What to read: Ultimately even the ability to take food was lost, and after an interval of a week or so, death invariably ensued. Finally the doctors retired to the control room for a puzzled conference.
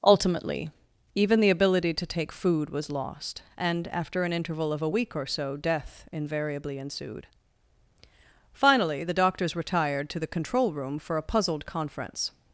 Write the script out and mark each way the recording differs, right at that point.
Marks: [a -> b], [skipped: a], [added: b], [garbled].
Ultimately even the ability to take food was lost, and after an interval of a week or so, death invariably ensued. Finally the doctors retired to the control room for a puzzled conference.